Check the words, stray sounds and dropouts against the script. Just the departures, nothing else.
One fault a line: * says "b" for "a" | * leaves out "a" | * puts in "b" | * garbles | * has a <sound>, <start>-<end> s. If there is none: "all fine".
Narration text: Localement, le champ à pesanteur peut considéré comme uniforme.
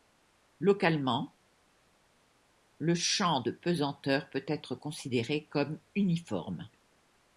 * says "de" for "à"
* puts in "être"